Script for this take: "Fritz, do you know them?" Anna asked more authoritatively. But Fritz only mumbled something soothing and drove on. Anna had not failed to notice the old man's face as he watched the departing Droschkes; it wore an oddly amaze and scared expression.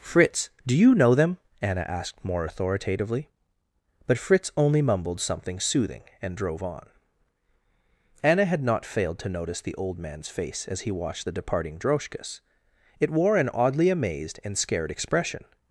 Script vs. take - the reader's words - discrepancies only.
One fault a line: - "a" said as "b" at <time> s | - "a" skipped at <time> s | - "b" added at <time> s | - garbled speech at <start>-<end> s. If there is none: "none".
- "amaze" said as "amazed" at 13.9 s